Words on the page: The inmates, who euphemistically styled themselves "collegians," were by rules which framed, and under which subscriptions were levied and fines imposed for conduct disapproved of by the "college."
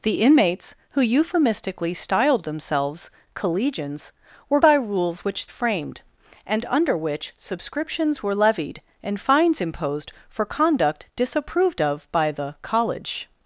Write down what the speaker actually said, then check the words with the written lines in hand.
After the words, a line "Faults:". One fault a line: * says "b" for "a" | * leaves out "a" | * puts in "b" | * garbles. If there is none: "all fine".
The inmates, who euphemistically styled themselves "collegians," were by rules which framed, and under which subscriptions were levied and fines imposed for conduct disapproved of by the "college."
Faults:
all fine